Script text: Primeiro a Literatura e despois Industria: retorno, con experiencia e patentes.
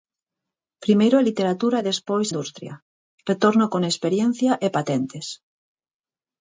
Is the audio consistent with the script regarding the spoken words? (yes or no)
yes